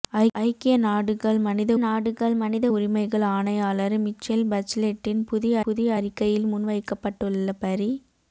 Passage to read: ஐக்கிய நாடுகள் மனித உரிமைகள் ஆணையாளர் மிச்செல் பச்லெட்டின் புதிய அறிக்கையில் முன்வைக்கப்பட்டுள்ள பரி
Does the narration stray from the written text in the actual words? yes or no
yes